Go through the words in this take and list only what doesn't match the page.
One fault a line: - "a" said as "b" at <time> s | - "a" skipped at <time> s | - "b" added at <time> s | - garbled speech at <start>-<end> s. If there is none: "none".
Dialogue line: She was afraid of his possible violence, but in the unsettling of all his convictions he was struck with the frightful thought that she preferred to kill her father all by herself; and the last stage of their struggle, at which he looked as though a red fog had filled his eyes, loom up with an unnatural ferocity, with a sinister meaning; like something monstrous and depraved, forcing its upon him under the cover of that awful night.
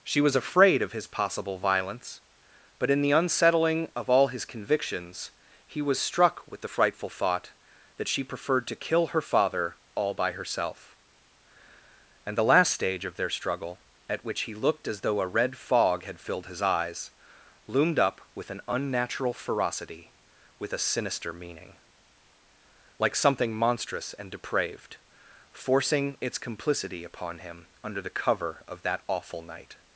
- "loom" said as "loomed" at 17.7 s
- "complicity" added at 26.4 s